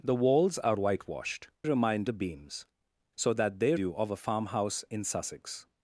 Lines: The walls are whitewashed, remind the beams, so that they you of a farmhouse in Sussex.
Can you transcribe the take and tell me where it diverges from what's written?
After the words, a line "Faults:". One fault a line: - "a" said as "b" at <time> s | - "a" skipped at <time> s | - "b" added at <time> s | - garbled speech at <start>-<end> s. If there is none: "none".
The walls are whitewashed, remind the beams, so that they you of a farmhouse in Sussex.
Faults:
none